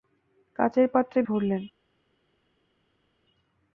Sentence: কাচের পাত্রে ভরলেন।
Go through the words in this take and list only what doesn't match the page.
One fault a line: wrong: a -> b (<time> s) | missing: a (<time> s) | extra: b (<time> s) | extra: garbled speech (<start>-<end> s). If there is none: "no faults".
no faults